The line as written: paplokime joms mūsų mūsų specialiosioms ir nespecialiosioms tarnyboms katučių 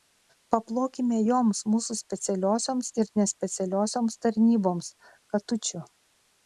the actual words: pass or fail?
fail